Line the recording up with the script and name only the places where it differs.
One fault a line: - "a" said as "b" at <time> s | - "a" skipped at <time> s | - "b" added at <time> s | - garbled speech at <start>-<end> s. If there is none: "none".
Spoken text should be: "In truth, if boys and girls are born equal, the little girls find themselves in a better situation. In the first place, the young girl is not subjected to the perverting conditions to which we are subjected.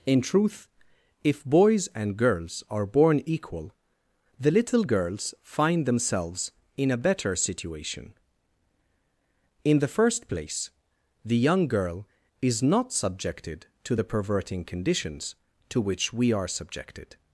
none